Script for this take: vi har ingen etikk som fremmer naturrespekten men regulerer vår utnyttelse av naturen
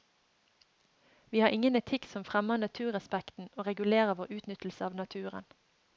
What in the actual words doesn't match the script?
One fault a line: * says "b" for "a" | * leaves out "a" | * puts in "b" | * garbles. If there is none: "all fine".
* says "og" for "men"